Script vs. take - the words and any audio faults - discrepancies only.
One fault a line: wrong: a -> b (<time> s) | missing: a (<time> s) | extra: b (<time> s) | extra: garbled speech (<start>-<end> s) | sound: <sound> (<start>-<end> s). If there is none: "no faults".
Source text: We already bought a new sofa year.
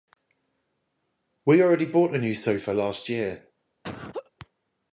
extra: last (2.7 s)
sound: laugh (3.8-4.3 s)